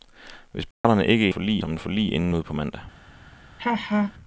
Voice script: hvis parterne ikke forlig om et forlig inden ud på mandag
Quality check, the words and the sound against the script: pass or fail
fail